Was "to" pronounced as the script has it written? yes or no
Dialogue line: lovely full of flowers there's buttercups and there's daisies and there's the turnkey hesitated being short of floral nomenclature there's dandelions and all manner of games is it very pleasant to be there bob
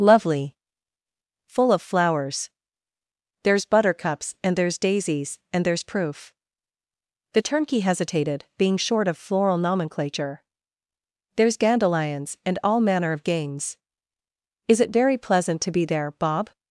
yes